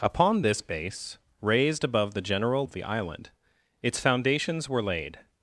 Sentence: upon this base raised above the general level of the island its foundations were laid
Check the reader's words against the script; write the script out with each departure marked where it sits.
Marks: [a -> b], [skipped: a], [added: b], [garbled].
upon this base raised above the general [skipped: level] of the island its foundations were laid